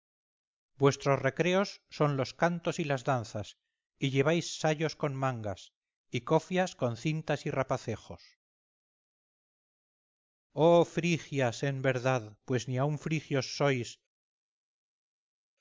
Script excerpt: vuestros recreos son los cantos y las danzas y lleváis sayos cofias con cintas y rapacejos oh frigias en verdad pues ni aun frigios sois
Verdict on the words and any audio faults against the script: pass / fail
fail